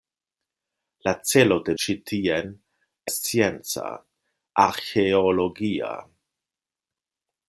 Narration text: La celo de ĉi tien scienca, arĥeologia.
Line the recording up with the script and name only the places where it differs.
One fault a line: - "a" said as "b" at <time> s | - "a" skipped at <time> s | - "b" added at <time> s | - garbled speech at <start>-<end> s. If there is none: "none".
none